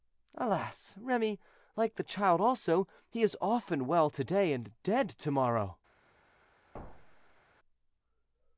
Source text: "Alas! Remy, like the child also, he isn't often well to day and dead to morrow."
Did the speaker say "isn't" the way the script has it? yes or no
no